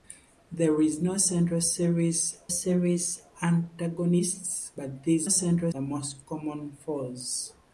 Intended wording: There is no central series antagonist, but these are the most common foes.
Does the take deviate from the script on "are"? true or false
true